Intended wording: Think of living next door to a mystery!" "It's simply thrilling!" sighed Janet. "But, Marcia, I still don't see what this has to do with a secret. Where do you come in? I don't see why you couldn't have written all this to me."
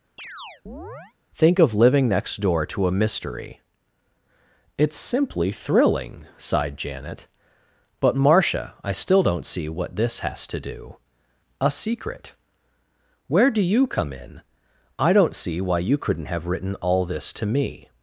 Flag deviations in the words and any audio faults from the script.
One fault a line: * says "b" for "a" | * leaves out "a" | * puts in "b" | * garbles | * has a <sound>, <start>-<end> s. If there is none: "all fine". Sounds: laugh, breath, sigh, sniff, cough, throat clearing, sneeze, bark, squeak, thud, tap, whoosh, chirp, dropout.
* has a chirp, 0.2-1.1 s
* leaves out "with"